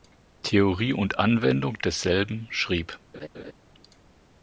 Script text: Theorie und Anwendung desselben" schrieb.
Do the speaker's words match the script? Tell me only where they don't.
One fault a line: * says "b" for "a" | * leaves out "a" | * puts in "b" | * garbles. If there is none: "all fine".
all fine